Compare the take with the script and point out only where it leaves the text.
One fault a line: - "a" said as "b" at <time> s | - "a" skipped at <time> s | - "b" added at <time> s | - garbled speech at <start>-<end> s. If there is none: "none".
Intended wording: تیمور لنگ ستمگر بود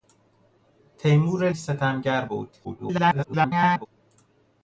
- "لنگ" skipped at 1.5 s
- garbled speech at 2.6-3.9 s